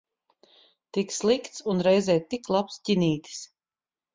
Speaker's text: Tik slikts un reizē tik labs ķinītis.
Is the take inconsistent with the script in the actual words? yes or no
no